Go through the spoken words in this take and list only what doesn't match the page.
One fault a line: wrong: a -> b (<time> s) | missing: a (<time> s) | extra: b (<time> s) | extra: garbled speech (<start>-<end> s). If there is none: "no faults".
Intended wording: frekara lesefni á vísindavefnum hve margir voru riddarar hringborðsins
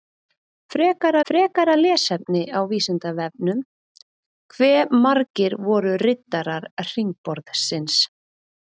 extra: frekara (1.3 s)